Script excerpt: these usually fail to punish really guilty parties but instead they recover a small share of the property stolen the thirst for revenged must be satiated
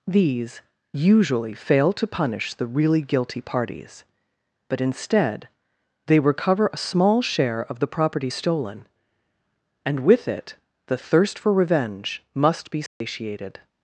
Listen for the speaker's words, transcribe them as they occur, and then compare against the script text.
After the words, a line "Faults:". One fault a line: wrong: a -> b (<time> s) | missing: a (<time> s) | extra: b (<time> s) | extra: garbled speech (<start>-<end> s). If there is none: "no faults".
these usually fail to punish the really guilty parties but instead they recover a small share of the property stolen and with it the thirst for revenge must be satiated
Faults:
extra: the (2.5 s)
extra: and with it (9.8 s)
wrong: revenged -> revenge (11.5 s)